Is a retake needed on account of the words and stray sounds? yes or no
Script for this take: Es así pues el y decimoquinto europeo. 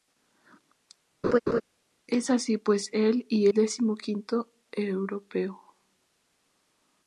yes